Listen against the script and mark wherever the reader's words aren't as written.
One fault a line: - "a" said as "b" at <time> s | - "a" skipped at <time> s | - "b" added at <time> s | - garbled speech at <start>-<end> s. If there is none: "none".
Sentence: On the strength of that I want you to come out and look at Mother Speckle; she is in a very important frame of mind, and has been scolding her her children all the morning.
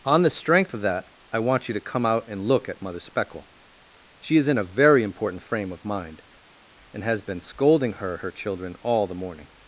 none